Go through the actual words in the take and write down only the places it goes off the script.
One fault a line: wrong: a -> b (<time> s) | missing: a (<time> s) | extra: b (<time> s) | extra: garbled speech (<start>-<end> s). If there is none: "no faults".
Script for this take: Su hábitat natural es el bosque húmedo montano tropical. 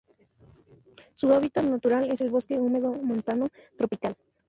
no faults